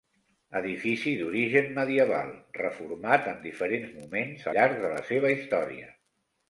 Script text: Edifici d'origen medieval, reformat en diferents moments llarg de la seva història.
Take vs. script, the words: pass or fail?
pass